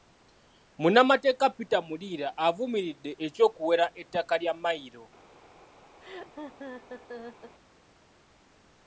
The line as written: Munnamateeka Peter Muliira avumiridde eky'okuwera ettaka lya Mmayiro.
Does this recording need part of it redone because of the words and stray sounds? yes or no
yes